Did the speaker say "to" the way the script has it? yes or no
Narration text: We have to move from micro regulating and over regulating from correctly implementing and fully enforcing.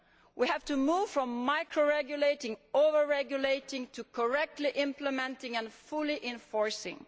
yes